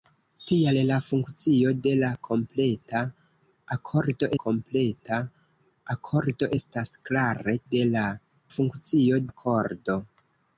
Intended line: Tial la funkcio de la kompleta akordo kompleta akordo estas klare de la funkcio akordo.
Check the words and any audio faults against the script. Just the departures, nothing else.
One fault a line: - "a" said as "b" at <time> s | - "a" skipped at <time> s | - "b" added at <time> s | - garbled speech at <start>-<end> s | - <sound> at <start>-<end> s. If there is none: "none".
none